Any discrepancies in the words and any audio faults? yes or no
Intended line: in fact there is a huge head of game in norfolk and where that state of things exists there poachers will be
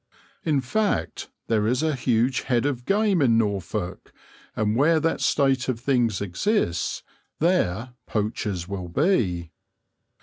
no